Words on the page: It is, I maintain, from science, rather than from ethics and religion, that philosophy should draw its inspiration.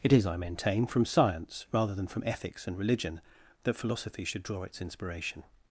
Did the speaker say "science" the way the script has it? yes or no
yes